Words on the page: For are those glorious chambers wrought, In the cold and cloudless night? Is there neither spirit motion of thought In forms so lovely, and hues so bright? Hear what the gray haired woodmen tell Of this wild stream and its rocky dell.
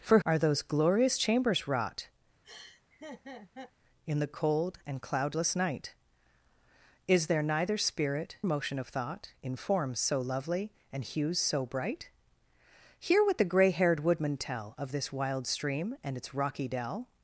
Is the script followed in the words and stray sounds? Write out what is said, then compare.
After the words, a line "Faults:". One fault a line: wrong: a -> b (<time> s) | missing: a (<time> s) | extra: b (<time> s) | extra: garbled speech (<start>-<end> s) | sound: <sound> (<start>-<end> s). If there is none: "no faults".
For are those glorious chambers wrought, In the cold and cloudless night? Is there neither spirit motion of thought In forms so lovely, and hues so bright? Hear what the gray haired woodmen tell Of this wild stream and its rocky dell.
Faults:
sound: laugh (2.4-3.7 s)